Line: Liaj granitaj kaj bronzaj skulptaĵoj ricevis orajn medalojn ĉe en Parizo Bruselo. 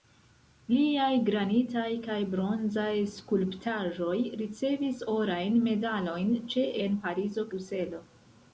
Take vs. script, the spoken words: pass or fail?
pass